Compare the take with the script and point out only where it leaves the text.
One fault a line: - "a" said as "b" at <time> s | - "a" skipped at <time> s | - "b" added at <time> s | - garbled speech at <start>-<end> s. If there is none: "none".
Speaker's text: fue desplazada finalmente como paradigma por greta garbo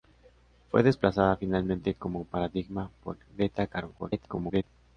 - garbled speech at 4.0-4.6 s